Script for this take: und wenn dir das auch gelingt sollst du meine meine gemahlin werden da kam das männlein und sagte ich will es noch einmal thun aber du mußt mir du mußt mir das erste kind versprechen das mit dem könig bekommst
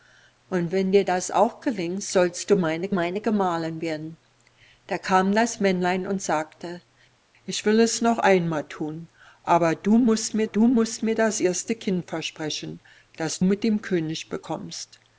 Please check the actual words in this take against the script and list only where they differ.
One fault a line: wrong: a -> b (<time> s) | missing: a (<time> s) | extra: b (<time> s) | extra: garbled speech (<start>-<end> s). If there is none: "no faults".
no faults